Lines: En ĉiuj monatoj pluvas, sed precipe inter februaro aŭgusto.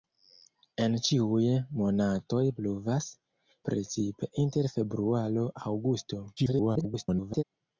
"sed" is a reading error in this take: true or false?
true